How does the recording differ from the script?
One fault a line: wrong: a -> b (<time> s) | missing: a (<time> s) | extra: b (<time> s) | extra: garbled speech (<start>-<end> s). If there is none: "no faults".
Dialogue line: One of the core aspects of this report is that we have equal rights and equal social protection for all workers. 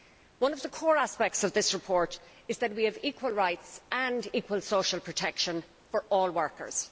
no faults